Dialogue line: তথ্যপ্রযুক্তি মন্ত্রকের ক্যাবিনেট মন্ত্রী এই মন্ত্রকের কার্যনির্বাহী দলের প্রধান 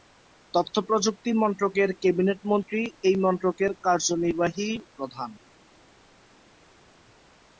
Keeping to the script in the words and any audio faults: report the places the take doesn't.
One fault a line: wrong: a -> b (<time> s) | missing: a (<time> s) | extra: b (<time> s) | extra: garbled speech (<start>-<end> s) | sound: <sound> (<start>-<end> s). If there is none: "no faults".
missing: দলের (4.7 s)